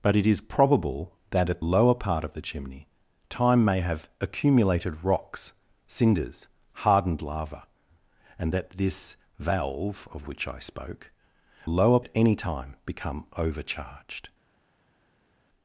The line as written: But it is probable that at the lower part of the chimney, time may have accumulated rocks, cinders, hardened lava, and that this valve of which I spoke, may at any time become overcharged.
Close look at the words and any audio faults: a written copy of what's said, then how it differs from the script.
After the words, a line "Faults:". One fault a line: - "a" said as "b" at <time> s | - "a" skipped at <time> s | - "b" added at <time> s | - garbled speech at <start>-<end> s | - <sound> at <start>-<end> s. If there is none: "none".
But it is probable that at lower part of the chimney, time may have accumulated rocks, cinders, hardened lava, and that this valve of which I spoke, lower at any time become overcharged.
Faults:
- "the" skipped at 1.6 s
- "may" said as "lower" at 11.7 s